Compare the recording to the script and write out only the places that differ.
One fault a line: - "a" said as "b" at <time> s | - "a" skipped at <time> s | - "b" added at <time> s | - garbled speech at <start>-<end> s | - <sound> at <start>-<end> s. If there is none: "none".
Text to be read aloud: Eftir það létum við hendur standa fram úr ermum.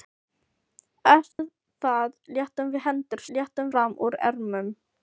- dropout at 1.3-1.4 s
- "standa" said as "létum" at 3.4 s